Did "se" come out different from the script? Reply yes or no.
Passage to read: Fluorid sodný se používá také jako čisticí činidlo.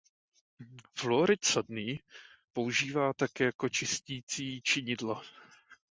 yes